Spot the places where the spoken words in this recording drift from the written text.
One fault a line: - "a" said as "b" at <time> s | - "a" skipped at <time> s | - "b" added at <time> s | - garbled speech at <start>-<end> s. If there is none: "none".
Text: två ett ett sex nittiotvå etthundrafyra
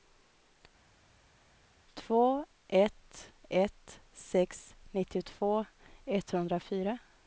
none